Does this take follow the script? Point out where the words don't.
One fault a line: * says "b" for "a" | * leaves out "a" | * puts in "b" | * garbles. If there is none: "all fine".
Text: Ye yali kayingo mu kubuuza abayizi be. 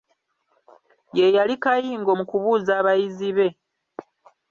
all fine